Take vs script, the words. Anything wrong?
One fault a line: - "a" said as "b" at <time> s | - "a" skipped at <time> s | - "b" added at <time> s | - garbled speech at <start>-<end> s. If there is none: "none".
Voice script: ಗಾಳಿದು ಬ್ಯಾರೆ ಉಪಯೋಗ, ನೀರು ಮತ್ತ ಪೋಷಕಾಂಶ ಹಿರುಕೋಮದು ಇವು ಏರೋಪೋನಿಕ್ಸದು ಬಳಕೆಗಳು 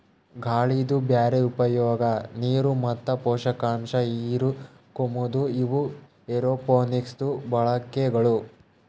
none